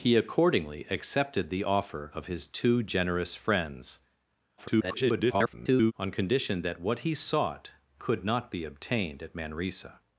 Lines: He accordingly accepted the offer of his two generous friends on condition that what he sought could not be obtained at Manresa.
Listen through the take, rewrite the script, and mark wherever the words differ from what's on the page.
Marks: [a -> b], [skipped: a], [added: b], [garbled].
He accordingly accepted the offer of his two generous friends [garbled] on condition that what he sought could not be obtained at Manresa.